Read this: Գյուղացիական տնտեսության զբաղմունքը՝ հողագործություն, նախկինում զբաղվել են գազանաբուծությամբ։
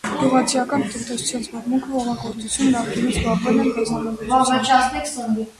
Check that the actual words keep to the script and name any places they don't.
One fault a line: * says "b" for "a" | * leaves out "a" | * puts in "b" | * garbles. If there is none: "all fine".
all fine